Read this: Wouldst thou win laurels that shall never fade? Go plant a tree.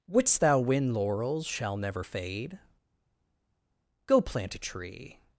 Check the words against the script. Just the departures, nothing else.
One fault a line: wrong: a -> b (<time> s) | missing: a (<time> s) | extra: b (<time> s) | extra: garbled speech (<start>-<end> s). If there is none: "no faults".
missing: that (1.4 s)